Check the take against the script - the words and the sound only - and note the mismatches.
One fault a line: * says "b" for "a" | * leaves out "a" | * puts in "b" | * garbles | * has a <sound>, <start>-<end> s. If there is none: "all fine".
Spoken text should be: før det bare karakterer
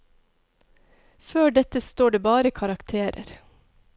* puts in "dette står"